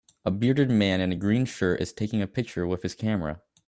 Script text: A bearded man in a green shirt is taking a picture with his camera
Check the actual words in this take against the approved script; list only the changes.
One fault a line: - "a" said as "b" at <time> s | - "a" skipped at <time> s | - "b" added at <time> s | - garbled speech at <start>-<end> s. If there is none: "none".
none